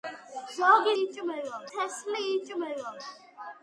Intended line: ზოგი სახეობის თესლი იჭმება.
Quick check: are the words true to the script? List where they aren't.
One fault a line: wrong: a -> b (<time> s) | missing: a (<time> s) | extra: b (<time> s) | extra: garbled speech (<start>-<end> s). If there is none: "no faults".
wrong: სახეობის -> იჭმება (1.0 s)